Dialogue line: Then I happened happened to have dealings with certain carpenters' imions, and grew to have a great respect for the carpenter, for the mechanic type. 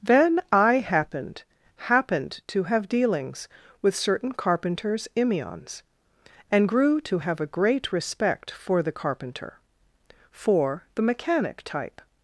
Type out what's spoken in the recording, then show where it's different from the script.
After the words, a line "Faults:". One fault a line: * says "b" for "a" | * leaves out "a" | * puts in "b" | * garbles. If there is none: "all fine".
Then I happened happened to have dealings with certain carpenters' imions, and grew to have a great respect for the carpenter, for the mechanic type.
Faults:
all fine